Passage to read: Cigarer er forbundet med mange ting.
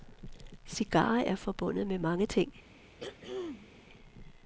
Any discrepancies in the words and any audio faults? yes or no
yes